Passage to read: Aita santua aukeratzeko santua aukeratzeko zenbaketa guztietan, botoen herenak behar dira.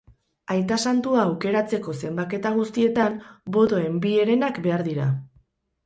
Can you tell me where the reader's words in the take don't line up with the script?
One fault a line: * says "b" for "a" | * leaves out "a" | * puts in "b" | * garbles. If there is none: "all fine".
* leaves out "santua aukeratzeko"
* puts in "bi"